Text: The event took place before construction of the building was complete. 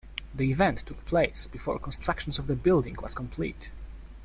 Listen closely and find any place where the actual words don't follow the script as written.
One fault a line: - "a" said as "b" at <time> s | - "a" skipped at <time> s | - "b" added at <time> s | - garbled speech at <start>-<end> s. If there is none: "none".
none